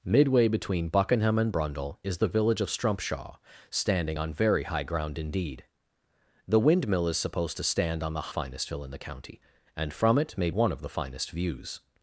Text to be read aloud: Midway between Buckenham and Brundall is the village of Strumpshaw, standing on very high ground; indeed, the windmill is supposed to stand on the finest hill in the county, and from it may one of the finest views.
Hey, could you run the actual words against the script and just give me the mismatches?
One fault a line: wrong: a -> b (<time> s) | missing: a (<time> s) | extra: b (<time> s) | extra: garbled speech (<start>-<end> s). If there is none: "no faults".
no faults